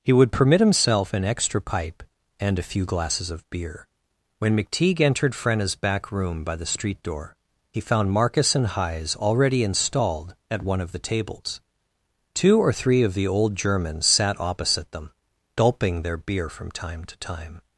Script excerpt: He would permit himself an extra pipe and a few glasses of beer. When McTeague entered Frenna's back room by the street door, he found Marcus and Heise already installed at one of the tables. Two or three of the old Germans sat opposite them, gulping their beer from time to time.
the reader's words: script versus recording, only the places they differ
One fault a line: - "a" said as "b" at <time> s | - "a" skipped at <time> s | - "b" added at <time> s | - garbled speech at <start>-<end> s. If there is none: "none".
none